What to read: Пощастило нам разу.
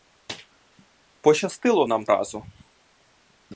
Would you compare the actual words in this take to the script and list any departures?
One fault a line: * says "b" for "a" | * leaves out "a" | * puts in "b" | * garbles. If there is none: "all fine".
all fine